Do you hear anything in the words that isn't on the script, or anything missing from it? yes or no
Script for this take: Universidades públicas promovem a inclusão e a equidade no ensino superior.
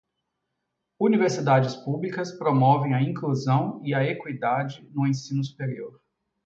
no